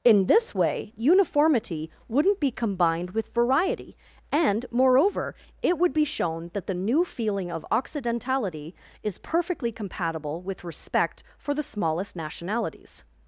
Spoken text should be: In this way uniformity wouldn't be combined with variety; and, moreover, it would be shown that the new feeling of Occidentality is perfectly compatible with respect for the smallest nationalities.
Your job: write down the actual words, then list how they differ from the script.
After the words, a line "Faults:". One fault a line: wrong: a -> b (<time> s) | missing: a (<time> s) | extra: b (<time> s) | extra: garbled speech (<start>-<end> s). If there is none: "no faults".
In this way uniformity wouldn't be combined with variety; and, moreover, it would be shown that the new feeling of Occidentality is perfectly compatible with respect for the smallest nationalities.
Faults:
no faults